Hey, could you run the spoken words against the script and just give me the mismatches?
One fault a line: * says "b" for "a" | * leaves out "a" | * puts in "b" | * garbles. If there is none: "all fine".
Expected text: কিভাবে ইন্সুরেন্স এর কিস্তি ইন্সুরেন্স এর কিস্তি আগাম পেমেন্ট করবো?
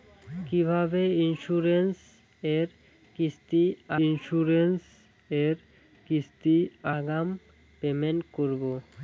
all fine